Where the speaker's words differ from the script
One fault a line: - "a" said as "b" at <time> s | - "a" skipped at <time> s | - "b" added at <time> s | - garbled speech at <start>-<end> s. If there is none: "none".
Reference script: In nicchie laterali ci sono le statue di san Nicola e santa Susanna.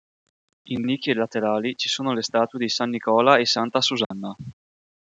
none